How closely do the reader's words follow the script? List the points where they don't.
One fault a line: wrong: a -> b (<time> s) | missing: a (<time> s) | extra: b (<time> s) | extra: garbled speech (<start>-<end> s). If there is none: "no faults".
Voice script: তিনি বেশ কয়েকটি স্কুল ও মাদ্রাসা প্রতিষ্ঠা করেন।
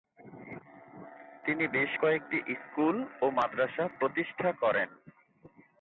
no faults